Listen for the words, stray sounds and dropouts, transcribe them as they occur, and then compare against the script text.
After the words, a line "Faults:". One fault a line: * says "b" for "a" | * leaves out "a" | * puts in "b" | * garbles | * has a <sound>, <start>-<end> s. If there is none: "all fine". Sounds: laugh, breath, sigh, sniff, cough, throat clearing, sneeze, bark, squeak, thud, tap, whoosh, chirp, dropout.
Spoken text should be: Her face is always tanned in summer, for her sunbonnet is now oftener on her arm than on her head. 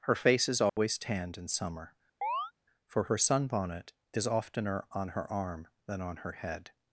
Her face is always tanned in summer, for her sunbonnet is oftener on her arm than on her head.
Faults:
* has a dropout, 0.7-0.8 s
* has a chirp, 2.2-2.5 s
* leaves out "now"